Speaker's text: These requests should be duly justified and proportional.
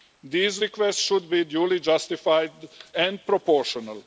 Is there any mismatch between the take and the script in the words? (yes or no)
no